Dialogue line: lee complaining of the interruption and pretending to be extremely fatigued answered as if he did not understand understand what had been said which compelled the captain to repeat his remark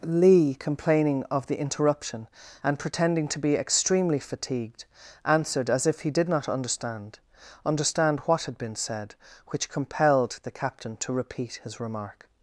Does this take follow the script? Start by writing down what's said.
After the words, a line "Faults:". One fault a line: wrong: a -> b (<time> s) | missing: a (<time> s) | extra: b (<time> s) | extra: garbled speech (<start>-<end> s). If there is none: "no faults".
lee complaining of the interruption and pretending to be extremely fatigued answered as if he did not understand understand what had been said which compelled the captain to repeat his remark
Faults:
no faults